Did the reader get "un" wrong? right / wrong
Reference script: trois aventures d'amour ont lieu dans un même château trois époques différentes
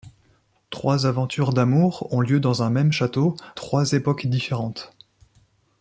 right